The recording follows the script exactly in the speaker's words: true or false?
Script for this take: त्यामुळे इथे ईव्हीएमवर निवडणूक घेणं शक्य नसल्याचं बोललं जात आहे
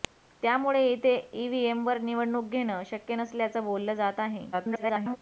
false